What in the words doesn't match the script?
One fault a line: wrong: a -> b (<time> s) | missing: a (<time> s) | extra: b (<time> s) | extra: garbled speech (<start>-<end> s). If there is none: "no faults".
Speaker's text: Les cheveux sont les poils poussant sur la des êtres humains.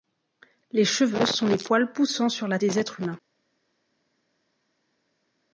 no faults